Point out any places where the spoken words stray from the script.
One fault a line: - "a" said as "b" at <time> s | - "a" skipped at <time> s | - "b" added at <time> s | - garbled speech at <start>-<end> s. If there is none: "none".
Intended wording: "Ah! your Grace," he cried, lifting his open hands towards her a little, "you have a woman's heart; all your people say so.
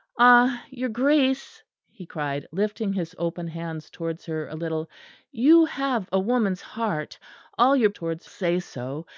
- "people" said as "towards" at 7.9 s